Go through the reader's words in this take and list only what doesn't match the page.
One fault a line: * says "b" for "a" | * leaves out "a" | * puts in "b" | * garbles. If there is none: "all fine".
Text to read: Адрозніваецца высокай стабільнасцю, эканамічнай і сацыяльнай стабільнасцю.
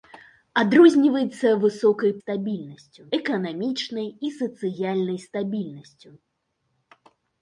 all fine